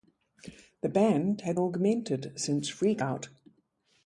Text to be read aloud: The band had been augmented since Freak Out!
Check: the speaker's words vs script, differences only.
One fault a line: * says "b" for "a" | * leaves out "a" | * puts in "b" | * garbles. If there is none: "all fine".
* leaves out "been"